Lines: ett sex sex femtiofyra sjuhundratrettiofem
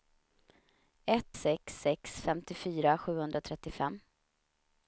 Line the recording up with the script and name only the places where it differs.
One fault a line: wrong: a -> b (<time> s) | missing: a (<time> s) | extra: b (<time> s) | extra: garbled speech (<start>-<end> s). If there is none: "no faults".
no faults